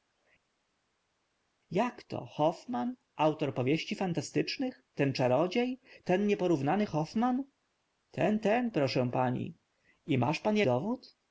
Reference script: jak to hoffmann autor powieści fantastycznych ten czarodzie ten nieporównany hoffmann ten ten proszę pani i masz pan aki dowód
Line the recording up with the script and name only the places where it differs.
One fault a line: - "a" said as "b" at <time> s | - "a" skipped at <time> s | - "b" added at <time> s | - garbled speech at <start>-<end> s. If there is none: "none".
- "aki" skipped at 10.6 s